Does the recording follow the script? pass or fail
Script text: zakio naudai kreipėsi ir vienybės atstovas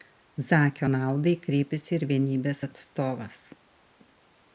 pass